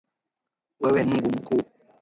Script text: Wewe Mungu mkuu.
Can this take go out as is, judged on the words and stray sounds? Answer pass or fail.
pass